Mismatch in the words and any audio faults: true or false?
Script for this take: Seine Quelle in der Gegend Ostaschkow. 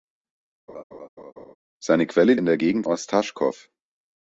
true